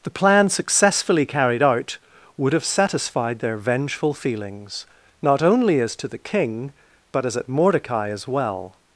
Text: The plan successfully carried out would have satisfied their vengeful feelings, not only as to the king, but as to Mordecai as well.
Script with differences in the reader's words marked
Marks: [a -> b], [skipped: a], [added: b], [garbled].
The plan successfully carried out would have satisfied their vengeful feelings, not only as to the king, but as [to -> at] Mordecai as well.